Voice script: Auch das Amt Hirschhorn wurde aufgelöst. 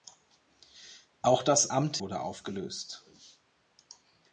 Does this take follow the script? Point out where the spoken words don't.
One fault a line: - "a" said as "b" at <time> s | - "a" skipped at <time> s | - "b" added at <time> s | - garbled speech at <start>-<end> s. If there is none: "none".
- "Hirschhorn" skipped at 2.0 s